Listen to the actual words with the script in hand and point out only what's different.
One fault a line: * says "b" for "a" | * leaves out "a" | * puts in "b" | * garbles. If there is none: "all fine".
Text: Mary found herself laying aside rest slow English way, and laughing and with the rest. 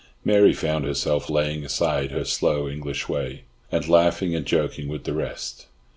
* says "her" for "rest"
* puts in "joking"